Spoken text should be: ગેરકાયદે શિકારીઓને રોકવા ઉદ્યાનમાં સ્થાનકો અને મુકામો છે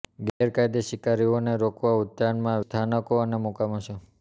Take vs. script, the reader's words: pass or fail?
pass